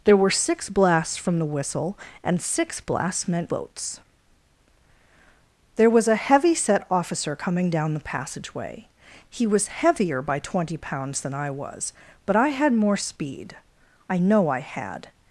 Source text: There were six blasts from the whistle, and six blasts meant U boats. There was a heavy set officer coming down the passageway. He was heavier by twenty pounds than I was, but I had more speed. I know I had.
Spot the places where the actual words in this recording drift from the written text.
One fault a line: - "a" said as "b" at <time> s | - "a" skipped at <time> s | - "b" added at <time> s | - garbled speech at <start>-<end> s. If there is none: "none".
- "U" skipped at 3.5 s